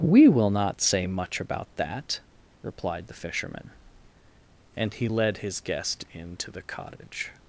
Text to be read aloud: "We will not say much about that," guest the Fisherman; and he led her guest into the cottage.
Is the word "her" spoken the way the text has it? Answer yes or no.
no